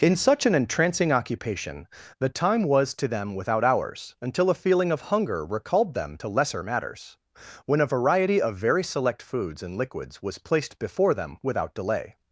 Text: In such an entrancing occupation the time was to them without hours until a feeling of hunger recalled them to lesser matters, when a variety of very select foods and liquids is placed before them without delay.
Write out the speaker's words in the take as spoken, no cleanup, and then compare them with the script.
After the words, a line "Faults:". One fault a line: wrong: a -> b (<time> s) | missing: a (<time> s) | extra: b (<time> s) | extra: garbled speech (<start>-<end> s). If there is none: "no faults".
In such an entrancing occupation the time was to them without hours until a feeling of hunger recalled them to lesser matters, when a variety of very select foods and liquids was placed before them without delay.
Faults:
wrong: is -> was (10.2 s)